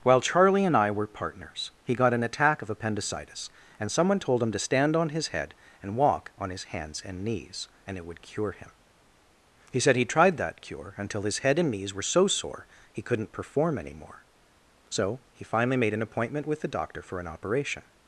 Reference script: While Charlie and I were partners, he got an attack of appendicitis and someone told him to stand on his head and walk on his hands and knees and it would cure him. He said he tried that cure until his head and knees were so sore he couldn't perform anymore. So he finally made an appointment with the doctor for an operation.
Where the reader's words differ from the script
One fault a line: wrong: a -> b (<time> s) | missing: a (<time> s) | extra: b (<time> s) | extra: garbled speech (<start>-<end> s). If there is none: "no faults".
no faults